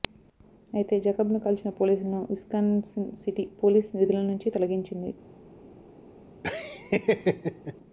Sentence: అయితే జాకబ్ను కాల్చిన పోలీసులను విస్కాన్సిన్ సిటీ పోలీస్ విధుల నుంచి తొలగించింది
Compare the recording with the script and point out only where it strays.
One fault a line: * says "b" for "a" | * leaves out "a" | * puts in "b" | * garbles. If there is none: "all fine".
all fine